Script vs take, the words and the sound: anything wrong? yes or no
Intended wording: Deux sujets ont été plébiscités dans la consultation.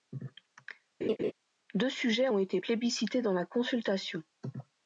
yes